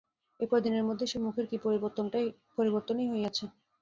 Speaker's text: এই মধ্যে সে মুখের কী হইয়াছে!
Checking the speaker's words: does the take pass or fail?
fail